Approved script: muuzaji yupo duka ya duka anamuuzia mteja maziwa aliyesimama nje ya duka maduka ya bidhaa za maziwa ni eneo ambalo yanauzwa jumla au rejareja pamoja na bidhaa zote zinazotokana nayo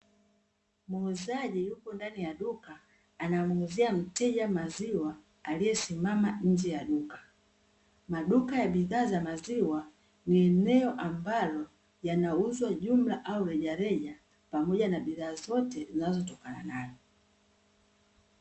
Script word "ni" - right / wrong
right